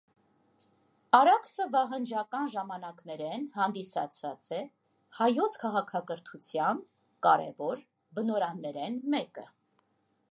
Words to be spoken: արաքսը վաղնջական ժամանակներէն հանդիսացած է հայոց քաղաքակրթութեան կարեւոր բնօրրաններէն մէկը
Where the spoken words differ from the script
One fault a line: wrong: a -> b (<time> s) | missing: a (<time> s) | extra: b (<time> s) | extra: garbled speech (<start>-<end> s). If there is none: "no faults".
no faults